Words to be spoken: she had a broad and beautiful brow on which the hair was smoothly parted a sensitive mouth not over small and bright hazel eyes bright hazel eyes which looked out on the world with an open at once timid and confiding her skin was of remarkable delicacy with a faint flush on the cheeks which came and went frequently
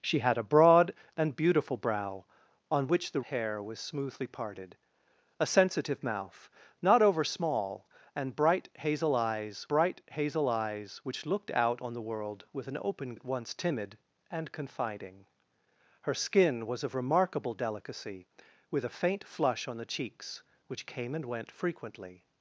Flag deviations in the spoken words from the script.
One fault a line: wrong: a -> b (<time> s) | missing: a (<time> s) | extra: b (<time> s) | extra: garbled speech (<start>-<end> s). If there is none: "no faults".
no faults